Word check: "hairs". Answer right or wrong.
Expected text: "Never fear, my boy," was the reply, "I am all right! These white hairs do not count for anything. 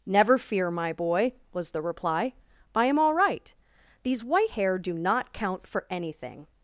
wrong